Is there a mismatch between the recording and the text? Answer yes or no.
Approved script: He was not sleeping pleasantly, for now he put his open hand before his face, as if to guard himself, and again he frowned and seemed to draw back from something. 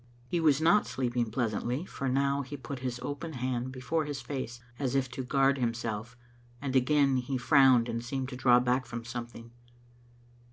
no